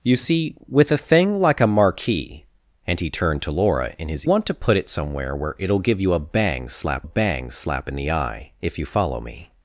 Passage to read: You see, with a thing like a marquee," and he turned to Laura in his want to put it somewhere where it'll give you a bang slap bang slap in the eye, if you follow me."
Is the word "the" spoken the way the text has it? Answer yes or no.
yes